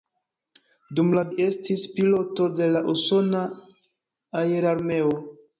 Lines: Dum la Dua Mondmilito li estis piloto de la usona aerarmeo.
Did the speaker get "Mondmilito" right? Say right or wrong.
wrong